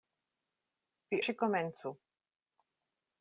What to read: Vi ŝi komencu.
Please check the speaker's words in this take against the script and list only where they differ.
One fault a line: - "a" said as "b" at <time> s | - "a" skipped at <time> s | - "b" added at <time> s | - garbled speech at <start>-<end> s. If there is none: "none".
none